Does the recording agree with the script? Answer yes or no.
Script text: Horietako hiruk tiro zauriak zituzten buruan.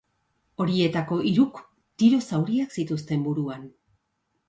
yes